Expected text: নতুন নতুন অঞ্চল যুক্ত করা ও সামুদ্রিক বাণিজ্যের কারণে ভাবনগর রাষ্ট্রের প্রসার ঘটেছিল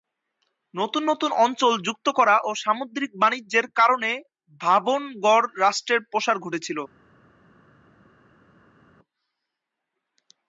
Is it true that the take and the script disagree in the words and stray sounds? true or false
false